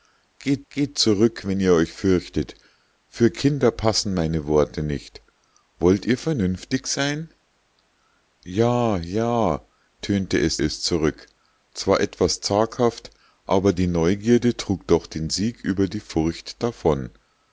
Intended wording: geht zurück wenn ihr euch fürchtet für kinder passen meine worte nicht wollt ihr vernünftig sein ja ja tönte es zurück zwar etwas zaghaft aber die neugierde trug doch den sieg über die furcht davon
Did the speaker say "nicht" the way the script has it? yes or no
yes